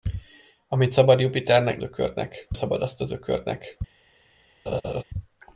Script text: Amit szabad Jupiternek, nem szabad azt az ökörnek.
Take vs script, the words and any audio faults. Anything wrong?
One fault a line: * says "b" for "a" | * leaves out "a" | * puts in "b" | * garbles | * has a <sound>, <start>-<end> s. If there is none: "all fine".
* says "ökörnek" for "nem"
* has a laugh, 4.7-5.0 s